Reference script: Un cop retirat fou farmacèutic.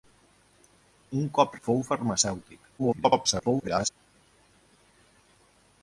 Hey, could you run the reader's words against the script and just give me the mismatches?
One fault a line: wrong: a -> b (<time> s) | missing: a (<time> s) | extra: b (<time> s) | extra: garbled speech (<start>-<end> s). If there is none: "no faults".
missing: retirat (1.6 s)
extra: garbled speech (2.8-3.9 s)